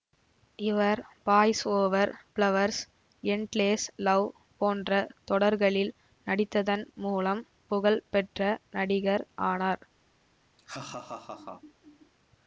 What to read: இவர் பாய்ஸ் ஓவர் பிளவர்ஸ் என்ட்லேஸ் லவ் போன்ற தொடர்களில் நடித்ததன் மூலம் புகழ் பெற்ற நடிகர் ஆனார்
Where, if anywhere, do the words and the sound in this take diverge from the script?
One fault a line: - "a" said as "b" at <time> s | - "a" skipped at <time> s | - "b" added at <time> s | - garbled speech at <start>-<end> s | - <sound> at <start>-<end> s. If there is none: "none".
- laugh at 10.6-12.1 s